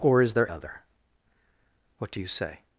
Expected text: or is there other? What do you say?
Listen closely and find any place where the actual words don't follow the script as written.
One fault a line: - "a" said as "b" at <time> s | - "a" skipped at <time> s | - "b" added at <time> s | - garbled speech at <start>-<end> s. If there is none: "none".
none